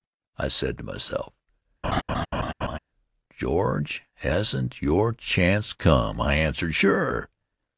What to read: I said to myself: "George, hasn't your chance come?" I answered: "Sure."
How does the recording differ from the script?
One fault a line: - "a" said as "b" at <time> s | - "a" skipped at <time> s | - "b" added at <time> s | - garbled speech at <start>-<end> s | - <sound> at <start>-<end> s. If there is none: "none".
- laugh at 1.8-2.8 s